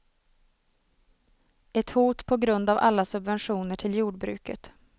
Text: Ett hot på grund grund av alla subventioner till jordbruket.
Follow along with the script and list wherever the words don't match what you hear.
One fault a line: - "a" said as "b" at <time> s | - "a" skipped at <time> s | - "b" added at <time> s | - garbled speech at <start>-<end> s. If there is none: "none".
- "grund" skipped at 2.7 s